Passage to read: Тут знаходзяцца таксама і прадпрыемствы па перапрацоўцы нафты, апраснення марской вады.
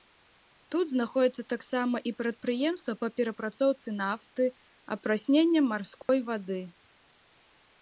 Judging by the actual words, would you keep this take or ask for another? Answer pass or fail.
pass